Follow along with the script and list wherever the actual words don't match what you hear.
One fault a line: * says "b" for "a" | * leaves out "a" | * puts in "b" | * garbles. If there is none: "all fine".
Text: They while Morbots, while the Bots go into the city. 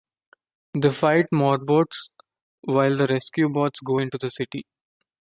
* says "fight" for "while"
* puts in "Rescue"